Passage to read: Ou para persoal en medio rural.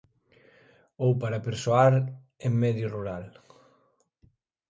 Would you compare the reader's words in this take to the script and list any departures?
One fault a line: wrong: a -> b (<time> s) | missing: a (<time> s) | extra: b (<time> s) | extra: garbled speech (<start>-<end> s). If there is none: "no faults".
no faults